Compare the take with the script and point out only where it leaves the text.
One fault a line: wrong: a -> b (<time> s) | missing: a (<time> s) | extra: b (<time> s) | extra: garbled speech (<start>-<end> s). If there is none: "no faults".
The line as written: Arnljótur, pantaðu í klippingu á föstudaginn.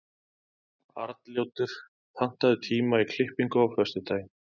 extra: tíma (2.7 s)